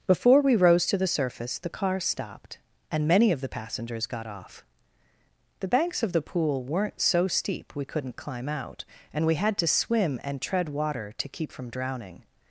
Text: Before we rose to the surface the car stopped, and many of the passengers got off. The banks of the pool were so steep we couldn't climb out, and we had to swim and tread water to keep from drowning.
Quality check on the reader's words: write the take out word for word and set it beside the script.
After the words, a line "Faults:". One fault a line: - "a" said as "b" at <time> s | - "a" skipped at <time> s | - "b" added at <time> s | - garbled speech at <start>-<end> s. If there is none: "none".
Before we rose to the surface the car stopped, and many of the passengers got off. The banks of the pool weren't so steep we couldn't climb out, and we had to swim and tread water to keep from drowning.
Faults:
- "were" said as "weren't" at 6.6 s